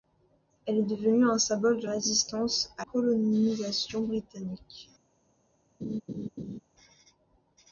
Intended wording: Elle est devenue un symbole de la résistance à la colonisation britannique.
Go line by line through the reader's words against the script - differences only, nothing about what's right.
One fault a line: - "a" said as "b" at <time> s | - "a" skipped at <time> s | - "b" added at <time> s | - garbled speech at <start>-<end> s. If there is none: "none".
- "la" skipped at 1.9 s
- "la" skipped at 2.9 s